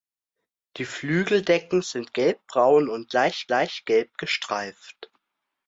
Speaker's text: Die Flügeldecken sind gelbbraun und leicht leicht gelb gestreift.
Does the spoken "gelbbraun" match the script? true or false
true